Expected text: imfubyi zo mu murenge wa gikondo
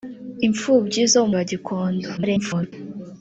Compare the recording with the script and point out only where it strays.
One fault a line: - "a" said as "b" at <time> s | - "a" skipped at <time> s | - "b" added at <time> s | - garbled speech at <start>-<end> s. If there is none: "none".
- "murenge" skipped at 1.3 s
- garbled speech at 2.2-2.7 s